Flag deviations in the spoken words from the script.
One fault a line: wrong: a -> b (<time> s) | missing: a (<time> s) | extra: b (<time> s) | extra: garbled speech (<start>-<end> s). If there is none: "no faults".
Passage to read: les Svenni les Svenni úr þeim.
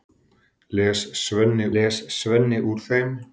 no faults